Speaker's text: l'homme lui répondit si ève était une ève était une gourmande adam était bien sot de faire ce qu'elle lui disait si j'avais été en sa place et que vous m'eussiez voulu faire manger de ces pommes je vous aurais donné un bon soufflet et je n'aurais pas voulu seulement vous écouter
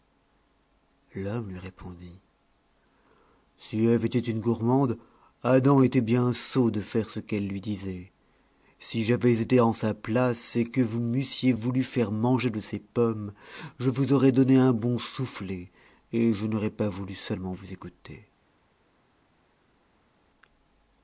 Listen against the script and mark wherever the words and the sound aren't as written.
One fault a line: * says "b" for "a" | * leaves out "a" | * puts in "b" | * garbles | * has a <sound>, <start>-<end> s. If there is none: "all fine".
* leaves out "ève était une"